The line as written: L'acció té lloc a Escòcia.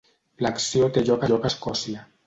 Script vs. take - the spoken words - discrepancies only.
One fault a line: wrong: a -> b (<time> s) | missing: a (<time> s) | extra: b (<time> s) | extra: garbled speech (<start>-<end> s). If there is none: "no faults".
extra: lloc (1.3 s)